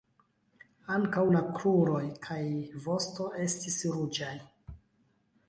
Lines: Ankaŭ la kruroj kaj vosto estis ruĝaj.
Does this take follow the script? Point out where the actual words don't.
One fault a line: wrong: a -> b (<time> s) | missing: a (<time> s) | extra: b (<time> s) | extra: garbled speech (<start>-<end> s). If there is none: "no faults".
no faults